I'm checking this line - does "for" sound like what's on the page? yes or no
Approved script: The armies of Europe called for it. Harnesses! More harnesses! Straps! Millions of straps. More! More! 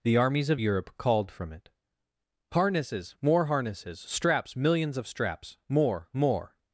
no